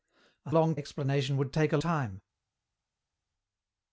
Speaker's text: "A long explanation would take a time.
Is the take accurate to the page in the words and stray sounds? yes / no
yes